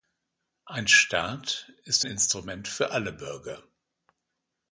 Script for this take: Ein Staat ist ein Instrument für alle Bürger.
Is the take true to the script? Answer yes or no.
no